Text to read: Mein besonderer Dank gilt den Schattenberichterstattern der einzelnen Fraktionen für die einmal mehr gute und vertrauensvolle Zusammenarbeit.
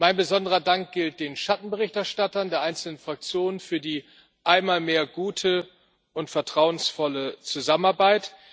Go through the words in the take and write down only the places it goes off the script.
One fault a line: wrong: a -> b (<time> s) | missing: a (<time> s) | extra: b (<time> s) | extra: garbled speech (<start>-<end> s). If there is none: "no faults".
no faults